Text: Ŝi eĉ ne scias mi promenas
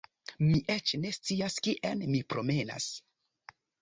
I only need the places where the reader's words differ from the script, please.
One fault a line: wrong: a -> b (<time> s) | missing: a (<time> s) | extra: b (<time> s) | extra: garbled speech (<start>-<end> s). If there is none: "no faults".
wrong: Ŝi -> Mi (0.4 s)
extra: kien (1.7 s)